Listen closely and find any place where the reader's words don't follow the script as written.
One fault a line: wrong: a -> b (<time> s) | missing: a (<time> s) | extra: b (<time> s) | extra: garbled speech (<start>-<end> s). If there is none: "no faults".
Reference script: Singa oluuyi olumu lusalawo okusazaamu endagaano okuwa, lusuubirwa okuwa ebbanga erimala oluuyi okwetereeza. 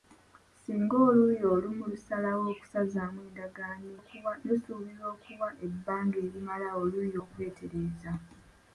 no faults